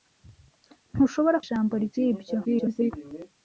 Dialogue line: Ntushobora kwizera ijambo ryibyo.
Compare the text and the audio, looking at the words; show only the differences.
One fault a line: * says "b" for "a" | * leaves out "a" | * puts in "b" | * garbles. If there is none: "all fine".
* leaves out "kwizera"
* garbles